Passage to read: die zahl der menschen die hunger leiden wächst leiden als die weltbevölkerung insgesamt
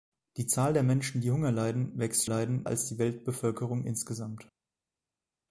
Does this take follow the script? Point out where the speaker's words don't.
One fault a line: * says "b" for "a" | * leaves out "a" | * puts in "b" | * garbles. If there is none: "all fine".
all fine